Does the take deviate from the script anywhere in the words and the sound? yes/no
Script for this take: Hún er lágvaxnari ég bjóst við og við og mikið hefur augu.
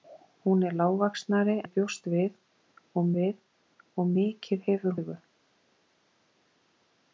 no